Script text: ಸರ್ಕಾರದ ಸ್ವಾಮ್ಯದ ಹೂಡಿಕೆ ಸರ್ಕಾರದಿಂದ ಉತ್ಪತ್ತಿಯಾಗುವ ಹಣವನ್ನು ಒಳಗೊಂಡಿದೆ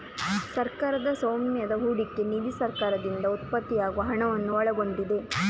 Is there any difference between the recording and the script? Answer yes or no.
yes